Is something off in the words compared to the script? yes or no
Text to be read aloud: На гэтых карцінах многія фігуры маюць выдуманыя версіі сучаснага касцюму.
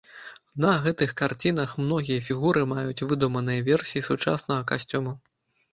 no